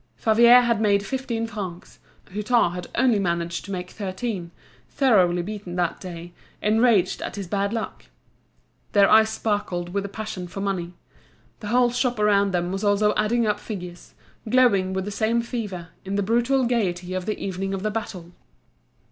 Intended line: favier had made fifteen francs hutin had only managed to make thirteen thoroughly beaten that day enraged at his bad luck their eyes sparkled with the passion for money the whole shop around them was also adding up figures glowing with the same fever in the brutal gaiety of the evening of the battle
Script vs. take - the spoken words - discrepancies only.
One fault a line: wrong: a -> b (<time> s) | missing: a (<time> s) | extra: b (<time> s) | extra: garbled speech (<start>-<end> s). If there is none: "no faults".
no faults